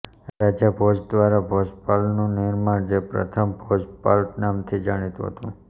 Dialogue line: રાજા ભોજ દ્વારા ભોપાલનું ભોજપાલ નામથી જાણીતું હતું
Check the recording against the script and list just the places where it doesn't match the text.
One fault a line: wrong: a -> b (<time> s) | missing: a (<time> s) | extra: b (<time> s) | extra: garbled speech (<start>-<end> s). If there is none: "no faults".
extra: નિર્માણ જે પ્રથમ (2.4 s)